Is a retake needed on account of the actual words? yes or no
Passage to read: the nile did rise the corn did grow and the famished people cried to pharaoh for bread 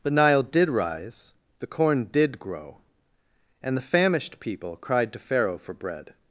no